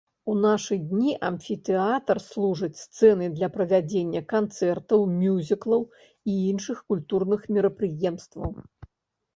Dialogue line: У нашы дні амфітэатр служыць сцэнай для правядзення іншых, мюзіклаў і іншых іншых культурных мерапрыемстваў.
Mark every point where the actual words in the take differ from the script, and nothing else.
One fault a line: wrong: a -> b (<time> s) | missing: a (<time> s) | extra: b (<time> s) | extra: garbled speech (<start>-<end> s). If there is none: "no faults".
wrong: іншых -> канцэртаў (4.3 s)
missing: іншых (6.8 s)